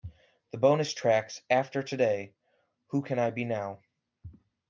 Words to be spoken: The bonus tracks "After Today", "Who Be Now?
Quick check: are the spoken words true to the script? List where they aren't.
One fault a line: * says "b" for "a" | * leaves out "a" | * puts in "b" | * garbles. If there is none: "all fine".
* puts in "Can I"